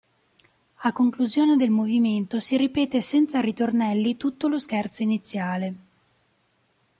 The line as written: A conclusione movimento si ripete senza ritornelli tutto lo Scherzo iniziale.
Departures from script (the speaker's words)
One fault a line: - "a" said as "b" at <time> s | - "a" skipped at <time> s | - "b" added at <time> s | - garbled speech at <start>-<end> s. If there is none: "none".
- "del" added at 1.6 s